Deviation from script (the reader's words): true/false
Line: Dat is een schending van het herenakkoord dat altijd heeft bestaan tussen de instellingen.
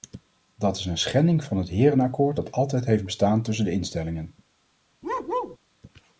false